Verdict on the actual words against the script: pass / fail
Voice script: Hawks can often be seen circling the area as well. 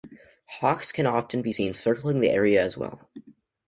pass